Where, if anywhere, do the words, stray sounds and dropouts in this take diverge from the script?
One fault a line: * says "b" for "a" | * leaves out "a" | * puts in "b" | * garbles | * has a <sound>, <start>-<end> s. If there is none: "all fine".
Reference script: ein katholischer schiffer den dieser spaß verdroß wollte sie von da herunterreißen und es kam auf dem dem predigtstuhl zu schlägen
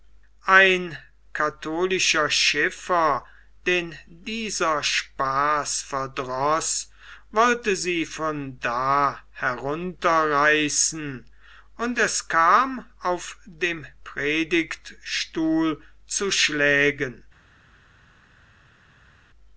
* leaves out "dem"